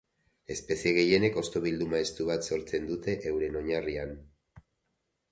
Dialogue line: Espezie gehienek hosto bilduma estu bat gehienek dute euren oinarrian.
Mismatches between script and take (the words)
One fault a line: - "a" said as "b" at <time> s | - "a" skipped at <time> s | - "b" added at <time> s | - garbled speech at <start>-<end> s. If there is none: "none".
- "gehienek" said as "sortzen" at 2.5 s